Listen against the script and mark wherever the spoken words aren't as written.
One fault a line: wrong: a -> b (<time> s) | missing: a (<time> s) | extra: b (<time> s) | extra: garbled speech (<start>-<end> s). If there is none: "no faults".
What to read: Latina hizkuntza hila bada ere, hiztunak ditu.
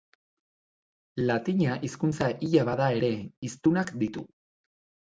no faults